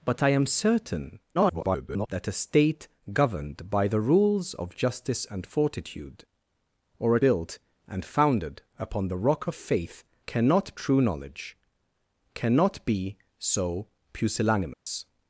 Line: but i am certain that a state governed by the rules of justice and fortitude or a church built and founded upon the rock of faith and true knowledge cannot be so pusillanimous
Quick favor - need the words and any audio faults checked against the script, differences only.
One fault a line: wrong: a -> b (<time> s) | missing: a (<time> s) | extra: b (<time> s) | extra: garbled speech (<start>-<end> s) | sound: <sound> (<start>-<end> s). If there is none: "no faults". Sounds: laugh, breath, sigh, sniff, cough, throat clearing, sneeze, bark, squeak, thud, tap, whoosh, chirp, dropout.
extra: garbled speech (1.3-2.1 s)
missing: church (7.2 s)
wrong: and -> cannot (10.3 s)
sound: dropout (14.7-14.9 s)